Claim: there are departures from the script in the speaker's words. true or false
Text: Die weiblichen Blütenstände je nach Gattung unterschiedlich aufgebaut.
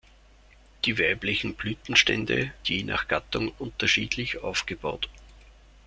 false